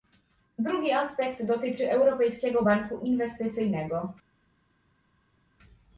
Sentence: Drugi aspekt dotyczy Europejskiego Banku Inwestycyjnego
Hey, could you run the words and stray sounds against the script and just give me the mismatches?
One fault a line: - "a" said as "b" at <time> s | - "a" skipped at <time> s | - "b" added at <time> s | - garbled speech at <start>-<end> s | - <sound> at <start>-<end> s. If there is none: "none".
none